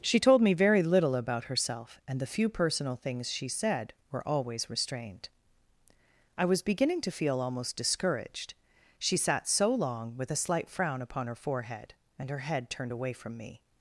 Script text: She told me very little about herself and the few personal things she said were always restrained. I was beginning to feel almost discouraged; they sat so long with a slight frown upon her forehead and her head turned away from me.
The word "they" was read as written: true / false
false